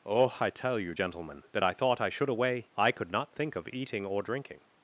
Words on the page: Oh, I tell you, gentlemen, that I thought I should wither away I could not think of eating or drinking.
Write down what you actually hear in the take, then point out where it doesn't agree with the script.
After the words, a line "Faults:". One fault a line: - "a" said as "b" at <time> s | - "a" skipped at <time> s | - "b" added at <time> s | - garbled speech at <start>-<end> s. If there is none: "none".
Oh, I tell you, gentlemen, that I thought I should away I could not think of eating or drinking.
Faults:
- "wither" skipped at 2.3 s